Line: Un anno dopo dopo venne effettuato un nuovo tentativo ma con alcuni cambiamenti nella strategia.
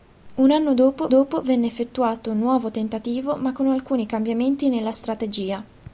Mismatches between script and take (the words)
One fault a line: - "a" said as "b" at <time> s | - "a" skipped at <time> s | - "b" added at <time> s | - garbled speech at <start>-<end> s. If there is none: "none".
none